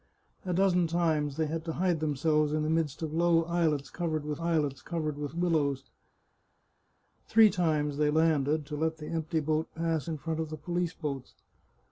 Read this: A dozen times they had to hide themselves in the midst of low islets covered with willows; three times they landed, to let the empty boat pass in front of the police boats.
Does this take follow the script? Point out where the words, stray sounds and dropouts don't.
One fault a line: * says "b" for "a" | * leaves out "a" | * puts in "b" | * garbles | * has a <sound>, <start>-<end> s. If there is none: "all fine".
* puts in "islets covered with"